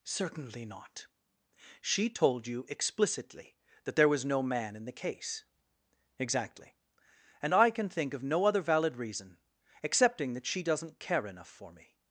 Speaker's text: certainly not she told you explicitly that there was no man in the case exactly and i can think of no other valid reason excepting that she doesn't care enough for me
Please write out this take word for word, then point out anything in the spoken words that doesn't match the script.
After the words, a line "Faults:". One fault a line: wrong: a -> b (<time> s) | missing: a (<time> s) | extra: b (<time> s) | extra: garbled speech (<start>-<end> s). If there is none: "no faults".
certainly not she told you explicitly that there was no man in the case exactly and i can think of no other valid reason excepting that she doesn't care enough for me
Faults:
no faults